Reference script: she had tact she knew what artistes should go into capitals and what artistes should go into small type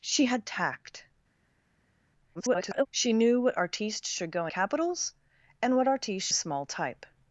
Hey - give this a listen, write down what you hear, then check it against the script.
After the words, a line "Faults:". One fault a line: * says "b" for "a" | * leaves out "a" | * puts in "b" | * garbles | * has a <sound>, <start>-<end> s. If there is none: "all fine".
she had tact [garbled] she knew what artistes should go capitals and what artistes small type
Faults:
* garbles
* leaves out "into"
* leaves out "should go into"